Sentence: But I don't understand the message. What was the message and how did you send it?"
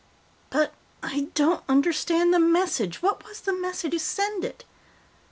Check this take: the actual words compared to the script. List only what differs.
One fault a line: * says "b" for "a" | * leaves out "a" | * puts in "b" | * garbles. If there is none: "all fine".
* leaves out "and how did"